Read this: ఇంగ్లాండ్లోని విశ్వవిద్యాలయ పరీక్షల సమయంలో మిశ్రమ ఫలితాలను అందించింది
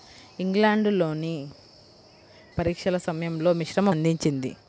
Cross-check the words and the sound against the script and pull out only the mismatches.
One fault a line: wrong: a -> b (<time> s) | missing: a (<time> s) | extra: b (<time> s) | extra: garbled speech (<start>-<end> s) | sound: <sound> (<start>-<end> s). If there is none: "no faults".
missing: విశ్వవిద్యాలయ (1.4 s)
missing: ఫలితాలను (3.9 s)